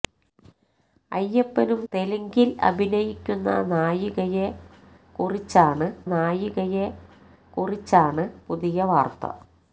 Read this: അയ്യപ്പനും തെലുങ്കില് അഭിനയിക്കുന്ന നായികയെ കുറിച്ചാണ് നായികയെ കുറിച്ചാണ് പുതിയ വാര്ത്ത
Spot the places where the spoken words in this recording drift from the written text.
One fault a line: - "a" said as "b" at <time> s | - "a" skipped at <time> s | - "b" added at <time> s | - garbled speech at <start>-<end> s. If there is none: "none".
none